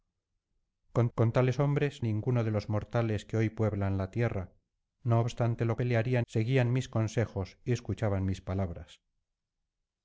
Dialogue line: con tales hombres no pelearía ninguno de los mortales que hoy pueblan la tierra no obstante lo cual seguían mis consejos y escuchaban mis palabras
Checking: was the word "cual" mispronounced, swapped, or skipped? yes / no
yes